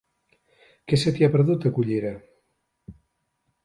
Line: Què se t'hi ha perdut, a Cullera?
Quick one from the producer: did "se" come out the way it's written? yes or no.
yes